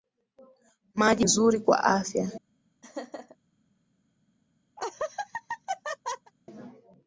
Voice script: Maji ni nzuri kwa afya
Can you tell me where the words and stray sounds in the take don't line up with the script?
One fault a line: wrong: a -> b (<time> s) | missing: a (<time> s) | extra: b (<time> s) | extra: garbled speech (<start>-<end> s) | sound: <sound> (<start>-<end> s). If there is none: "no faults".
missing: ni (1.2 s)
sound: laugh (2.8-3.4 s)
sound: laugh (4.8-6.3 s)